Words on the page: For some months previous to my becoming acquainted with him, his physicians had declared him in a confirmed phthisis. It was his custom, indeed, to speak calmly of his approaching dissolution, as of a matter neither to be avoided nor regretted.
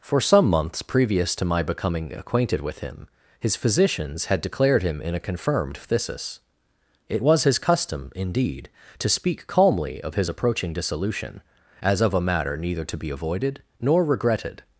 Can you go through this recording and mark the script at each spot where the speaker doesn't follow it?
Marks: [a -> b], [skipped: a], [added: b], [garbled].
For some months previous to my becoming acquainted with him, his physicians had declared him in a confirmed phthisis. It was his custom, indeed, to speak calmly of his approaching dissolution, as of a matter neither to be avoided nor regretted.